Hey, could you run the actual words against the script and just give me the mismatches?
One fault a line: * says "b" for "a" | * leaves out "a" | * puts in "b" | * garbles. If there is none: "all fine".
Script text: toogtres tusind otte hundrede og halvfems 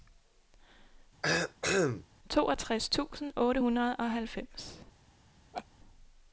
all fine